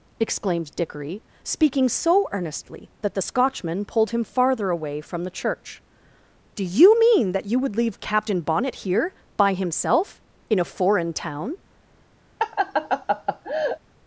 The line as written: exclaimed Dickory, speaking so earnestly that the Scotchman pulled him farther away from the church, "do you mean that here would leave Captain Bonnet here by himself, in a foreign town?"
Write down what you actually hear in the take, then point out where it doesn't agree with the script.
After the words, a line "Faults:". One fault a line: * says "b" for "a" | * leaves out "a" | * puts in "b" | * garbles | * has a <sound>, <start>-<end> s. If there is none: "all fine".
exclaimed Dickory, speaking so earnestly that the Scotchman pulled him farther away from the church, "do you mean that you would leave Captain Bonnet here by himself, in a foreign town?"
Faults:
* says "you" for "here"
* has a laugh, 12.4-13.8 s